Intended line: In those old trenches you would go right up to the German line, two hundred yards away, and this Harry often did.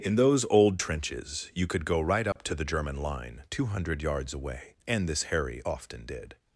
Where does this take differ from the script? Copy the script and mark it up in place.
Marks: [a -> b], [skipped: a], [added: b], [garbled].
In those old trenches you [would -> could] go right up to the German line, two hundred yards away, and this Harry often did.